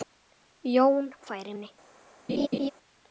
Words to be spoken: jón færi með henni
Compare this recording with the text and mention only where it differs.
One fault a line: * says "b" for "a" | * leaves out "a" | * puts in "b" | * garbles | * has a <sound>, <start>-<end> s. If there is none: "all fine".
* leaves out "með"
* has a laugh, 2.3-2.7 s